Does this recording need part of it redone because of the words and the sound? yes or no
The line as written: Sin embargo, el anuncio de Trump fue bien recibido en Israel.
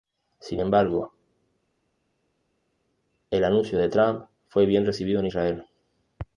no